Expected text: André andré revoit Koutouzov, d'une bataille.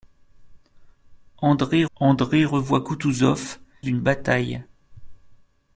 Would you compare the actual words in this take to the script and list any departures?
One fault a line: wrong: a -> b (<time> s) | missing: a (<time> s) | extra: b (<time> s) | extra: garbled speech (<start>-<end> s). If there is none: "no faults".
no faults